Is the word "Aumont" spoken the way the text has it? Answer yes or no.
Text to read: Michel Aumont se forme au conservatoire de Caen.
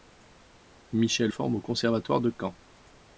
no